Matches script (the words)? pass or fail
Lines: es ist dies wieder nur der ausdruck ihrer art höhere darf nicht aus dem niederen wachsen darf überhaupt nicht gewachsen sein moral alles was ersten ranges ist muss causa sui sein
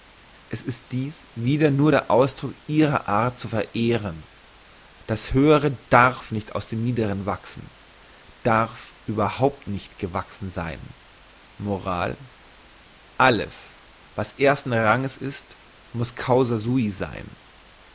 fail